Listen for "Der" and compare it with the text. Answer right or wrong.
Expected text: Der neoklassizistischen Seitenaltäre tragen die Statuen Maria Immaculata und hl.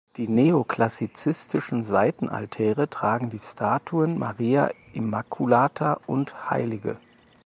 wrong